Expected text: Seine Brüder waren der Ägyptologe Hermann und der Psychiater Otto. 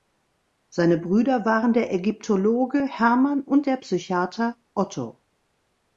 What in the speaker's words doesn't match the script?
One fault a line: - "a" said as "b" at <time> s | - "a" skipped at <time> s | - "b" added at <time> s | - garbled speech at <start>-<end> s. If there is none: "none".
none